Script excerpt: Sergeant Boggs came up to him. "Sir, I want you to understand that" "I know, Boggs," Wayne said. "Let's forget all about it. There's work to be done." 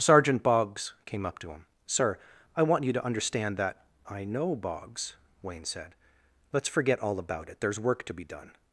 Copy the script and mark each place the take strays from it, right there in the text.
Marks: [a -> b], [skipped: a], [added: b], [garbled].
Sergeant Boggs came up to him. "Sir, I want you to understand that" "I know, Boggs," Wayne said. "Let's forget all about it. There's work to be done."